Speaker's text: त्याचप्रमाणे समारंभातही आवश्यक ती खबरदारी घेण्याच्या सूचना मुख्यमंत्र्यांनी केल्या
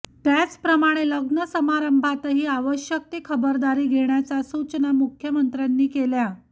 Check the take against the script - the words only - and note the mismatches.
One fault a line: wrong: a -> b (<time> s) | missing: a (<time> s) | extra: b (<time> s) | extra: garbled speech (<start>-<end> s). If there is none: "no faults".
extra: लग्न (1.1 s)